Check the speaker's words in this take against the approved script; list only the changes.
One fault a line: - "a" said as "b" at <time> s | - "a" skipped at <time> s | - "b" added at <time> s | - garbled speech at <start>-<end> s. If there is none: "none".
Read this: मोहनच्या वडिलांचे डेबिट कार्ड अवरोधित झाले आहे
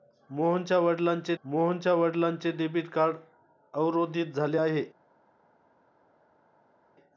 - "मोहनच्या वडिलांचे" added at 1.4 s